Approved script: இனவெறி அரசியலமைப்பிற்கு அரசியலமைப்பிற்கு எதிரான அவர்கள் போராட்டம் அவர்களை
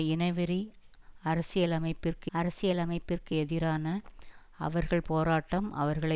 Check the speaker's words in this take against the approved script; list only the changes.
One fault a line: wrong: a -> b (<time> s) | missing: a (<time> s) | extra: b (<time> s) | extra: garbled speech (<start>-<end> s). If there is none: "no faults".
no faults